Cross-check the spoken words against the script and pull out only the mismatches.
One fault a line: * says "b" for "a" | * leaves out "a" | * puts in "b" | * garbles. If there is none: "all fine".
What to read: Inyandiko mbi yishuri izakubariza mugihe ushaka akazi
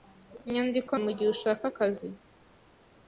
* leaves out "mbi yishuri izakubariza"